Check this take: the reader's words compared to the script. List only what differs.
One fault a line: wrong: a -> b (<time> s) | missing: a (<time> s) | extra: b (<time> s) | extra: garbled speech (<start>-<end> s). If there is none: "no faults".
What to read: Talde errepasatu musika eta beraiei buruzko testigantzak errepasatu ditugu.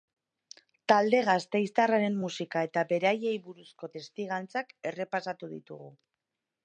wrong: errepasatu -> gasteiztarraren (1.3 s)